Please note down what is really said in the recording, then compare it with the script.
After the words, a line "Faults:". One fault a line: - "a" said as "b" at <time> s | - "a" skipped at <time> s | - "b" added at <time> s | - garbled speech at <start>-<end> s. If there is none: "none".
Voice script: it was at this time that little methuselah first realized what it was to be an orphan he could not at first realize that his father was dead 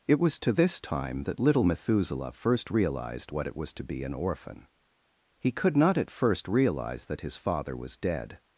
it was to this time that little methuselah first realized what it was to be an orphan he could not at first realize that his father was dead
Faults:
- "at" said as "to" at 0.4 s